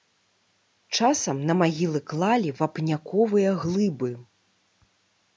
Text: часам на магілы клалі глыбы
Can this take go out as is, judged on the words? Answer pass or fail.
fail